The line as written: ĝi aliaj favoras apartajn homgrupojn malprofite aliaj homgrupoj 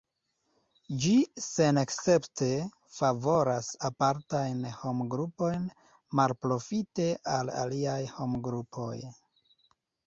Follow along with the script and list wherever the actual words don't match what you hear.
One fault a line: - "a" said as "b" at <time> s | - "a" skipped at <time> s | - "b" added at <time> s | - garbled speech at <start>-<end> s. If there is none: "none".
- "aliaj" said as "senescepte" at 1.5 s
- "al" added at 7.4 s